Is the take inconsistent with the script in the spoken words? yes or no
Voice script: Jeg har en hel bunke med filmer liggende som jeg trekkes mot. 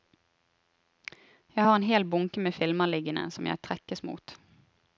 no